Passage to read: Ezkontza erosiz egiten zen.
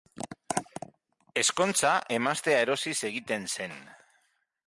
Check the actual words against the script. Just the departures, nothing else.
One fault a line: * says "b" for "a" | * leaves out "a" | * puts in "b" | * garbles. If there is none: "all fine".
* puts in "emaztea"